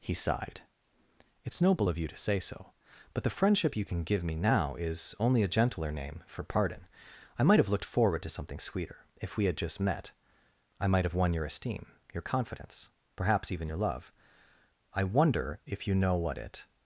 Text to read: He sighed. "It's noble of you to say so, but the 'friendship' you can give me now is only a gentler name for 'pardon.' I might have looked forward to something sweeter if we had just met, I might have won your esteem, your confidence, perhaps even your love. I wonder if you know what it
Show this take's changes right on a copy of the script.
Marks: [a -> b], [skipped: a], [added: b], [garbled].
He sighed. "It's noble of you to say so, but the 'friendship' you can give me now is only a gentler name for 'pardon.' I might have looked forward to something sweeter if we had just met, I might have won your esteem, your confidence, perhaps even your love. I wonder if you know what it